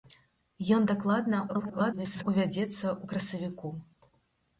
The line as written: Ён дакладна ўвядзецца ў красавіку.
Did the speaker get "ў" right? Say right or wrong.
right